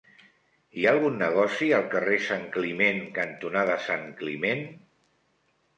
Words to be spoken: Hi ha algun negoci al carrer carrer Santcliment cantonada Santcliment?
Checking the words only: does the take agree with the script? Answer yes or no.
no